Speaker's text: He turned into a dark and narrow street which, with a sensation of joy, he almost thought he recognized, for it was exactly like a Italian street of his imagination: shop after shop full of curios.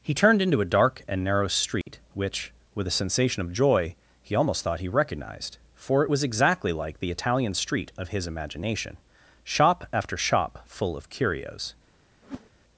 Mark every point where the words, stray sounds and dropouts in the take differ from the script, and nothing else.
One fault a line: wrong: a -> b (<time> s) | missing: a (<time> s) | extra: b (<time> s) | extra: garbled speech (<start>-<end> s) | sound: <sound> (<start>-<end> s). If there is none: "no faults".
sound: dropout (1.8-1.9 s)
wrong: a -> the (7.0 s)
sound: whoosh (12.2-12.5 s)